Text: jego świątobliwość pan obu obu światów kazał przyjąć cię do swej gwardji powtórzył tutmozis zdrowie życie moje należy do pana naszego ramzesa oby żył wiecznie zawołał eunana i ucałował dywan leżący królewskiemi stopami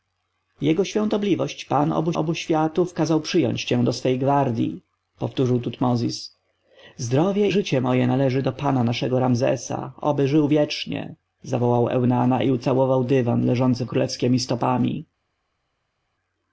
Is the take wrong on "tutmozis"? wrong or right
right